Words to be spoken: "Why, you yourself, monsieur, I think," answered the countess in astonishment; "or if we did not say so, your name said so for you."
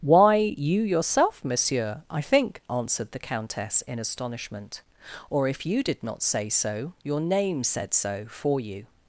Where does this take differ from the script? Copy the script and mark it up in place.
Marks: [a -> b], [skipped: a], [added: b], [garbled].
"Why, you yourself, monsieur, I think," answered the countess in astonishment; "or if [we -> you] did not say so, your name said so for you."